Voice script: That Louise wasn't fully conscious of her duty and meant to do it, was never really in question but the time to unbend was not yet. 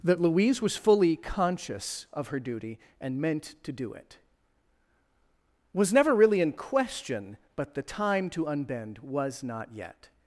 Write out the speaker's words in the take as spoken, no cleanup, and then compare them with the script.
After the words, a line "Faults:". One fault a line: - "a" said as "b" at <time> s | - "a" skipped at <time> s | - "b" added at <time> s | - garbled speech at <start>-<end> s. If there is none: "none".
That Louise was fully conscious of her duty and meant to do it, was never really in question but the time to unbend was not yet.
Faults:
- "wasn't" said as "was" at 0.6 s